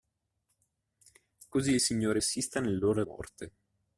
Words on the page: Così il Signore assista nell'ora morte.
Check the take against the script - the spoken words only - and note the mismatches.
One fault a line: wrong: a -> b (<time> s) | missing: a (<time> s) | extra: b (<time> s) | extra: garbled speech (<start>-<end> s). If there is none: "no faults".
no faults